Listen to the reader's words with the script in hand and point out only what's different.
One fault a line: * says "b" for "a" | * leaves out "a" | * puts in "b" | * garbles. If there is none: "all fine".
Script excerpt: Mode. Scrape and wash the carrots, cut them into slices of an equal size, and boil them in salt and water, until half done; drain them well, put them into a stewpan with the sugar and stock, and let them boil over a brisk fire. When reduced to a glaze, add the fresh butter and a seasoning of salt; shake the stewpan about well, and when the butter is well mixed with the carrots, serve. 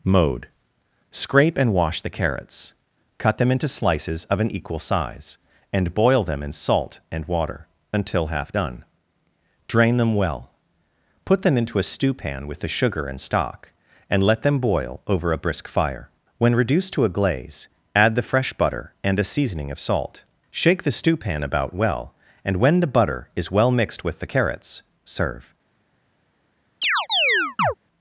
all fine